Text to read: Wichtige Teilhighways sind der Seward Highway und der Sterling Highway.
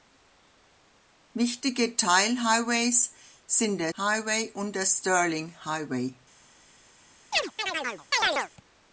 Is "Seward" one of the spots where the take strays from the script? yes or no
yes